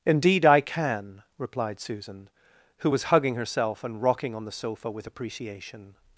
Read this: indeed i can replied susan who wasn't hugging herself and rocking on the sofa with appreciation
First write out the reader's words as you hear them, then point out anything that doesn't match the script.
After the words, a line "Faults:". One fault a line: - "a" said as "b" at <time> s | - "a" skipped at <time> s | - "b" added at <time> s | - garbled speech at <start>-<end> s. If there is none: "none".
indeed i can replied susan who was hugging herself and rocking on the sofa with appreciation
Faults:
- "wasn't" said as "was" at 2.9 s